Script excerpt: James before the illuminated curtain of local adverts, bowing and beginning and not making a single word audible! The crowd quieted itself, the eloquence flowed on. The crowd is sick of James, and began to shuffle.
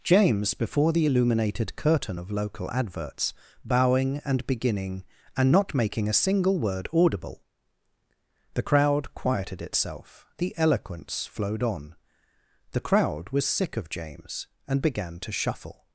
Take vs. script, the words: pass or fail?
fail